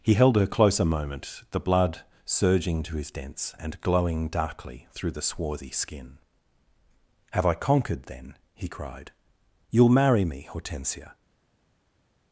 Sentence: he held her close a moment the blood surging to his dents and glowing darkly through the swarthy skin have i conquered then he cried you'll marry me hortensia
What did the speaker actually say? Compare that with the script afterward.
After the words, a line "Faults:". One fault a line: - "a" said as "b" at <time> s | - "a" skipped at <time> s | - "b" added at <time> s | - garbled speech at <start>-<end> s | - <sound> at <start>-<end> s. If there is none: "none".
he held her close a moment the blood surging to his dents and glowing darkly through the swarthy skin have i conquered then he cried you'll marry me hortensia
Faults:
none